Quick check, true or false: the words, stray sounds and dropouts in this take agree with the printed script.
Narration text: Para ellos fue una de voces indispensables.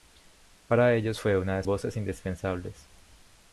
true